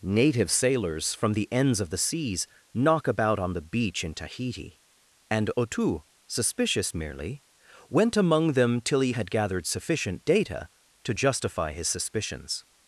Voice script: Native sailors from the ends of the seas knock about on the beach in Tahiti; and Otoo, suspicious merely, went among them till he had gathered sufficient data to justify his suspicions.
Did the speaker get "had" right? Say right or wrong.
right